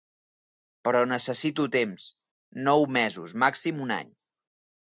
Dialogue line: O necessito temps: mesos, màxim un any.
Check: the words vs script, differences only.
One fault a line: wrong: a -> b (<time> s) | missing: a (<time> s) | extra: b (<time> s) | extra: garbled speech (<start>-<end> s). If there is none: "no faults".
wrong: O -> Però (0.9 s)
extra: nou (2.7 s)